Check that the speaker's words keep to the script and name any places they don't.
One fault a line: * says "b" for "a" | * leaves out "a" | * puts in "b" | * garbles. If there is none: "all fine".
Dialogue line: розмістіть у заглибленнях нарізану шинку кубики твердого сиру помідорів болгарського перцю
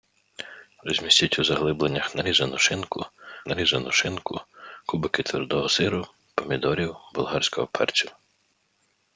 * puts in "нарізану шинку"